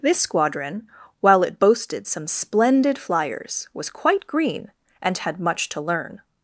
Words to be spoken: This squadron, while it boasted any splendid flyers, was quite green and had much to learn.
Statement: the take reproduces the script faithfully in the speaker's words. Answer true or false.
false